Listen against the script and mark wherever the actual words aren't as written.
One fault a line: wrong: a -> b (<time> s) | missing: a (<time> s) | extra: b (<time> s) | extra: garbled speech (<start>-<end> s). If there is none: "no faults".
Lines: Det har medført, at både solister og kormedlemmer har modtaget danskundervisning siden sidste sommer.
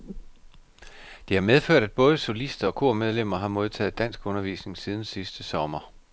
no faults